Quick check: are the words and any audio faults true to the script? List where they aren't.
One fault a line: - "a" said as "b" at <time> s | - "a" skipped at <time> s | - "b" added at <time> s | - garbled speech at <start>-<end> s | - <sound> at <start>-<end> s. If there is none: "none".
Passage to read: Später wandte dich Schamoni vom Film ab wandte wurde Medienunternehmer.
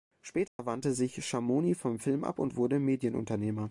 - dropout at 0.5-0.6 s
- "dich" said as "sich" at 0.9 s
- "wandte" said as "und" at 2.4 s